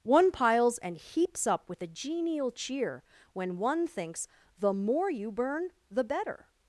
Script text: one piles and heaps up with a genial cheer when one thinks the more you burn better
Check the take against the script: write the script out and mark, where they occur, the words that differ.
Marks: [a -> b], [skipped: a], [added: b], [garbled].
one piles and heaps up with a genial cheer when one thinks the more you burn [added: the] better